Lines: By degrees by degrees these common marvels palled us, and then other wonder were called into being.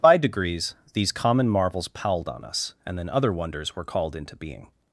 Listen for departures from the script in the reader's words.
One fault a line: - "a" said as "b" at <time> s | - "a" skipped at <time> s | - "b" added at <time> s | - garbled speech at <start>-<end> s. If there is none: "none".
- "by degrees" skipped at 0.7 s
- "on" added at 2.3 s
- "wonder" said as "wonders" at 3.3 s